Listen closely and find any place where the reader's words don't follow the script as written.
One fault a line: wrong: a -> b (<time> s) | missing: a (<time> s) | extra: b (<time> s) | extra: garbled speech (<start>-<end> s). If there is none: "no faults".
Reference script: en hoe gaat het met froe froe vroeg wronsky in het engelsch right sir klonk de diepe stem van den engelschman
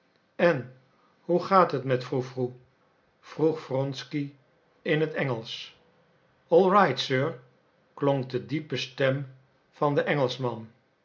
extra: all (6.5 s)